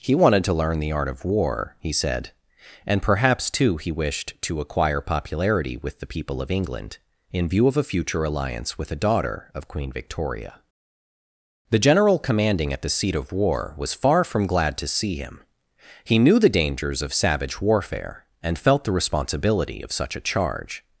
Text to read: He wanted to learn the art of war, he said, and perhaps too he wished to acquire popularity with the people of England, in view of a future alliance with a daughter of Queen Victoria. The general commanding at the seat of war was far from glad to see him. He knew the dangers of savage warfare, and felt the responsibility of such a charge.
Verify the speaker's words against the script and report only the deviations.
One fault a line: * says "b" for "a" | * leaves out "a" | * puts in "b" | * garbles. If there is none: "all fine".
all fine